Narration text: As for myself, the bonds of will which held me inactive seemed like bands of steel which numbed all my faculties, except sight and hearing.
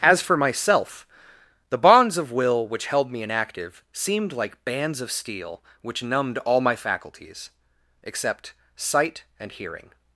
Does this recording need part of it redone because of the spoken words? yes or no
no